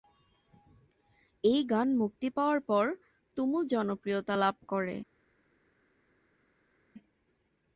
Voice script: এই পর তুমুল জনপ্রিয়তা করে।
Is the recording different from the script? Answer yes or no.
yes